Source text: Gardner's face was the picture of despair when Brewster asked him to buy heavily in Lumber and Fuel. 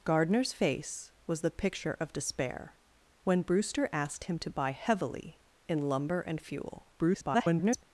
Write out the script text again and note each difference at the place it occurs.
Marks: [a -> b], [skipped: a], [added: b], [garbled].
Gardner's face was the picture of despair when Brewster asked him to buy heavily in Lumber and Fuel. [garbled]